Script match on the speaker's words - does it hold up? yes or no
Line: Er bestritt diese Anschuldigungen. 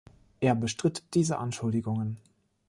yes